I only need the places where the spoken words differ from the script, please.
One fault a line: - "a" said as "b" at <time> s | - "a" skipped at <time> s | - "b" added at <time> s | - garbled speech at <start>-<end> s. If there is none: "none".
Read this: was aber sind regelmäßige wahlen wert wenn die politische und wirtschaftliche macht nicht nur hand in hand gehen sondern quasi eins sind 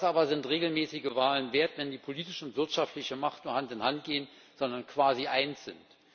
- "nicht" skipped at 3.5 s